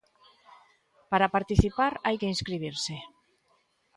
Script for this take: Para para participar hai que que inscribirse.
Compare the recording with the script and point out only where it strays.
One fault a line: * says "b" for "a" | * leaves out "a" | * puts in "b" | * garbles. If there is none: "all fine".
* leaves out "para"
* leaves out "que"